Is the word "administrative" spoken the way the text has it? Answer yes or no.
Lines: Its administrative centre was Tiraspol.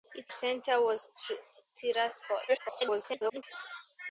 no